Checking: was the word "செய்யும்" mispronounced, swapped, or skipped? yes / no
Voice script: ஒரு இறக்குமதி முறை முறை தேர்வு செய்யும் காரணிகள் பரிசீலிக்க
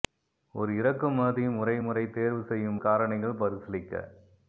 no